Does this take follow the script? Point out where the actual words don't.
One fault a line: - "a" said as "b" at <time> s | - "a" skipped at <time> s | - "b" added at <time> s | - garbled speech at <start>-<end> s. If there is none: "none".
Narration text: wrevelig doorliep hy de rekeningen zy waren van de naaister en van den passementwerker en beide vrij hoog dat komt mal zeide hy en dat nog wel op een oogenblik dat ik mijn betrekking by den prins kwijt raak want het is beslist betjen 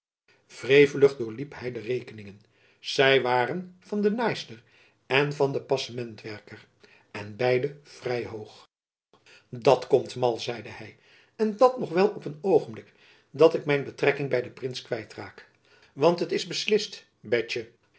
none